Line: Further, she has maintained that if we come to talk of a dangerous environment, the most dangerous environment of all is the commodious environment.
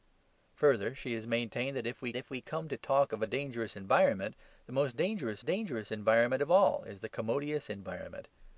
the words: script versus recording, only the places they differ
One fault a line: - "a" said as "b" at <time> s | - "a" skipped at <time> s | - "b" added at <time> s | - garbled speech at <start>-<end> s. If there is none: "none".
- "if we" added at 2.1 s
- "dangerous" added at 5.4 s